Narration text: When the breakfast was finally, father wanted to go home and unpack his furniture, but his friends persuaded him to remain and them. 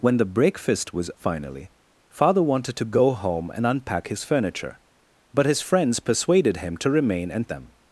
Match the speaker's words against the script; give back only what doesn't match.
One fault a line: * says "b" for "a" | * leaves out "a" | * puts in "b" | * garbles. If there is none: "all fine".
all fine